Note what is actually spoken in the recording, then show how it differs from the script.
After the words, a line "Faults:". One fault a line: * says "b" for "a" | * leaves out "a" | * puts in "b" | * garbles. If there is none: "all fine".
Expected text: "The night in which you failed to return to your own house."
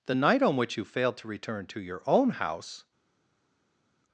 "The night on which you failed to return to your own house."
Faults:
* says "on" for "in"